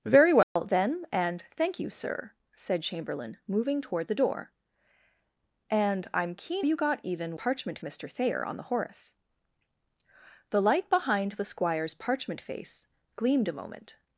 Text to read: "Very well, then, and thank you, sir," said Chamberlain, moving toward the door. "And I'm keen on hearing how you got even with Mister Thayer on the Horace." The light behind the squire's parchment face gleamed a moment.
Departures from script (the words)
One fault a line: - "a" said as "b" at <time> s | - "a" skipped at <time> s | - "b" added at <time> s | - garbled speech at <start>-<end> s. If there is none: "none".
- "on hearing how" skipped at 6.7 s
- "with" said as "parchment" at 7.3 s